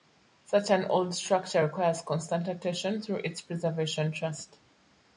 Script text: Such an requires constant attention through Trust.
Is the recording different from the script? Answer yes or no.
yes